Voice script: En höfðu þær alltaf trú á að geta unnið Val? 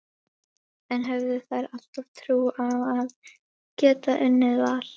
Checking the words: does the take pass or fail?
pass